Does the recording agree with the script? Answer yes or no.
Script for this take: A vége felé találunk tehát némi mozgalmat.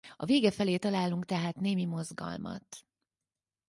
yes